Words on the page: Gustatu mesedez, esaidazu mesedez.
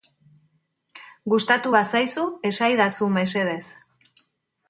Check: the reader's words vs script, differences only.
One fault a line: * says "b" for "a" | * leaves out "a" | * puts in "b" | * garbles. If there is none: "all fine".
* says "bazaizu" for "mesedez"